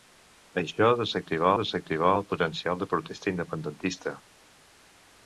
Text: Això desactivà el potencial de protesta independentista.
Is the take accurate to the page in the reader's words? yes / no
no